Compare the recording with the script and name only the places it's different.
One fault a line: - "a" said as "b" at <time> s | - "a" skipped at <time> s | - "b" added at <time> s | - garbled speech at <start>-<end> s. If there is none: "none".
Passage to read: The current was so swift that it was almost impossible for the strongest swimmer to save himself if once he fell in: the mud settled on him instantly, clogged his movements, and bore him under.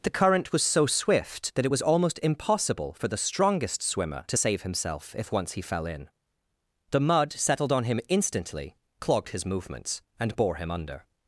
none